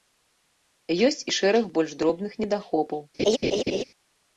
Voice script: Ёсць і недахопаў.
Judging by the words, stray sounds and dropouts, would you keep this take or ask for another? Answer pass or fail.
fail